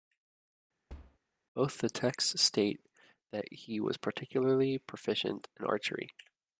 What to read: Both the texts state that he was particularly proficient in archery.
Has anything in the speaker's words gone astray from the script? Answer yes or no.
no